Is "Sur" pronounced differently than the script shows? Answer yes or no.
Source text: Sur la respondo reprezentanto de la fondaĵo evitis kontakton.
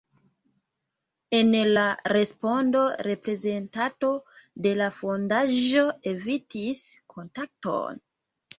yes